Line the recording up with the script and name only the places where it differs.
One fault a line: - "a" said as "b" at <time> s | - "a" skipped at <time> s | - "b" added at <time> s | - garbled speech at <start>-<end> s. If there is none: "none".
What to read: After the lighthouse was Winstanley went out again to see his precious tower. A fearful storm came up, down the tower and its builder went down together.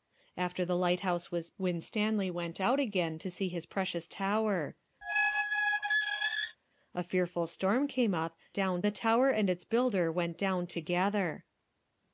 none